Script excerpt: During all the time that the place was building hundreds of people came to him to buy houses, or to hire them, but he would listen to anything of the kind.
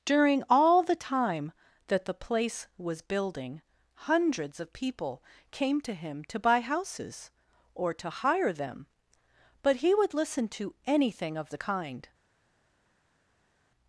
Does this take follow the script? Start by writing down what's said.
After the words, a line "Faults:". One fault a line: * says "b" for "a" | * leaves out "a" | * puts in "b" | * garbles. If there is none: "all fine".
During all the time that the place was building hundreds of people came to him to buy houses, or to hire them, but he would listen to anything of the kind.
Faults:
all fine